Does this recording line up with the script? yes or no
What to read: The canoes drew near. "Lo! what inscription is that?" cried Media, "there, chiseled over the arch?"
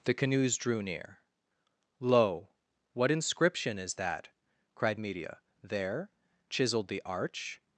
no